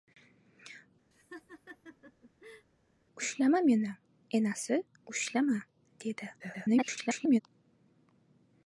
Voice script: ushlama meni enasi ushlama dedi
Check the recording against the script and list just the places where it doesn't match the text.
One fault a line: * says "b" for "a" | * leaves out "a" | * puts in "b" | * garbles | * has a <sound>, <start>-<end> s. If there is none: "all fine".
* has a laugh, 1.1-2.7 s
* garbles